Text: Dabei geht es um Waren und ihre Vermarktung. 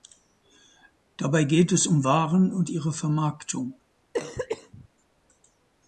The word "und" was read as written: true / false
true